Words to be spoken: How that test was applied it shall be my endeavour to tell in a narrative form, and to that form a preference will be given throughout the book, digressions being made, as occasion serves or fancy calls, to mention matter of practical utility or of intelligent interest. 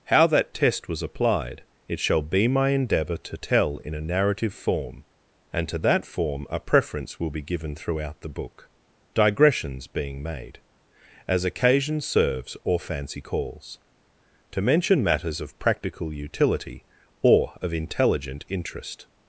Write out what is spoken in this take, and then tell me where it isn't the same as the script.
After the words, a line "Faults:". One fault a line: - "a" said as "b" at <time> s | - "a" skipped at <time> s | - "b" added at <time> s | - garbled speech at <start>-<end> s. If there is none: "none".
How that test was applied it shall be my endeavour to tell in a narrative form, and to that form a preference will be given throughout the book, digressions being made, as occasion serves or fancy calls, to mention matters of practical utility or of intelligent interest.
Faults:
- "matter" said as "matters" at 15.0 s